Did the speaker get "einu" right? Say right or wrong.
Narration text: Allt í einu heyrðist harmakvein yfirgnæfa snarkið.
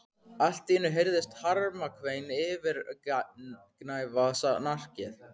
right